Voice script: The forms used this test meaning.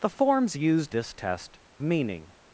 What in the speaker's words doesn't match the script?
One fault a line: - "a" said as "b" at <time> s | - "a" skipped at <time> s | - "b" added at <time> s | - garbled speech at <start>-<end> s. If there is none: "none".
none